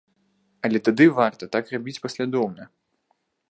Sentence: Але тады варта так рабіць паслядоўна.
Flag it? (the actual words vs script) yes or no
no